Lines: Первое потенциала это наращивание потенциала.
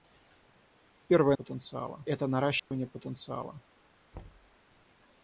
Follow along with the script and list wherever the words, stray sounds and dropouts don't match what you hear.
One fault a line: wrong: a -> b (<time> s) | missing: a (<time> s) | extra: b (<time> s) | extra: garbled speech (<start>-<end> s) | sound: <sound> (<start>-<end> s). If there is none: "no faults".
sound: dropout (2.6-2.7 s)
sound: thud (4.1-4.6 s)